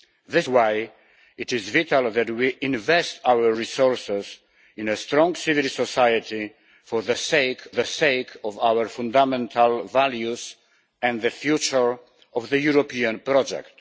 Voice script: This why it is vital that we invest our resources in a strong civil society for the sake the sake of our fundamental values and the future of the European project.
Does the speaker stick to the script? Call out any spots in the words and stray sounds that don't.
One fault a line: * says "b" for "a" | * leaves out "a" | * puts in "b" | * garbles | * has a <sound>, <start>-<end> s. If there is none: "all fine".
all fine